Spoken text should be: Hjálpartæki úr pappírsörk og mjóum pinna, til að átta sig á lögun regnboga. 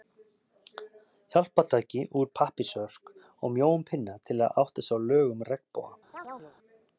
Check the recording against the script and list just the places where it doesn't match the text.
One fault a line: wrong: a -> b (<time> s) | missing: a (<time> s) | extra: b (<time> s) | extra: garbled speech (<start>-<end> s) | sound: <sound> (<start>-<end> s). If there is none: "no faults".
sound: chirp (6.1-6.6 s)